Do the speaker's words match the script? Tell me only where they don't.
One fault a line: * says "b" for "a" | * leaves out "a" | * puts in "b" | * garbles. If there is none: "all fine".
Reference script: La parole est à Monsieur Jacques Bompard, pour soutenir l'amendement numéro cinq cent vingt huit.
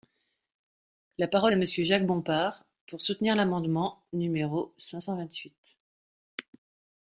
* leaves out "est"